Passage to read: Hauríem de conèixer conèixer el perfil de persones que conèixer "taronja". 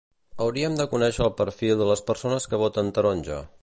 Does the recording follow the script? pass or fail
fail